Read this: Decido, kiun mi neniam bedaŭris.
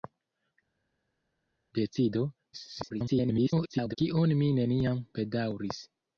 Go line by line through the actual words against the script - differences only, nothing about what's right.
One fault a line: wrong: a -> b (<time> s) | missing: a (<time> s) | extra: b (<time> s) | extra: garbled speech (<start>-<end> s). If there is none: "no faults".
extra: garbled speech (2.5-4.0 s)